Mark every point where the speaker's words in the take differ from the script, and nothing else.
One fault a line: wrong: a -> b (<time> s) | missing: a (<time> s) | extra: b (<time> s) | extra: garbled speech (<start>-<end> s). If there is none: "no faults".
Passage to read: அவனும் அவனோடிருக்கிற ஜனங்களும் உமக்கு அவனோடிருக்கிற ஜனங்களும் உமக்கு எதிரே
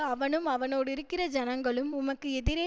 missing: அவனோடிருக்கிற ஜனங்களும் உமக்கு (2.3 s)